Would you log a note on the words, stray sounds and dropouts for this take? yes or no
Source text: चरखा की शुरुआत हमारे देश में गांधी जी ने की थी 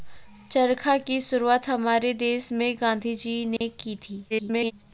yes